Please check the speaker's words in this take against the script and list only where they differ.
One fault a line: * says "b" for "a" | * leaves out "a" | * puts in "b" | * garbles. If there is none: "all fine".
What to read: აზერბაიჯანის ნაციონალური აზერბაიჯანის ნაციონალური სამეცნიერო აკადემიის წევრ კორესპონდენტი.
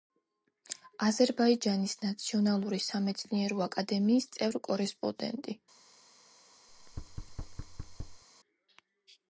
* leaves out "აზერბაიჯანის ნაციონალური"